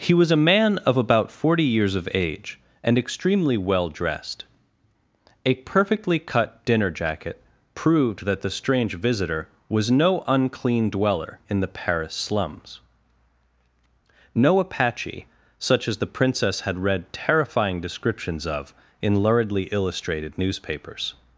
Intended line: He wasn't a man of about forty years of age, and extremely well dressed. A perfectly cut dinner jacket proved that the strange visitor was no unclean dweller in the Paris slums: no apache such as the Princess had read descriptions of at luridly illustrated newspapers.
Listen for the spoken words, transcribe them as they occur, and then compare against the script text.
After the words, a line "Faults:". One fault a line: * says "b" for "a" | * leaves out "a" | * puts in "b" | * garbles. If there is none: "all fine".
He was a man of about forty years of age, and extremely well dressed. A perfectly cut dinner jacket proved that the strange visitor was no unclean dweller in the Paris slums: no apache such as the Princess had read terrifying descriptions of in luridly illustrated newspapers.
Faults:
* says "was" for "wasn't"
* puts in "terrifying"
* says "in" for "at"